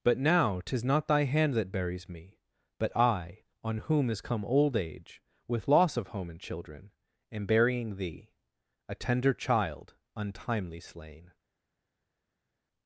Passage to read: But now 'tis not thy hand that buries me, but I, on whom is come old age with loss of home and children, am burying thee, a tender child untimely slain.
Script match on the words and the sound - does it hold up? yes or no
yes